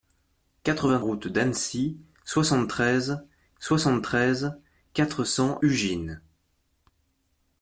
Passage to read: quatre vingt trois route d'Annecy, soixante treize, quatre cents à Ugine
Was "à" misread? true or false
true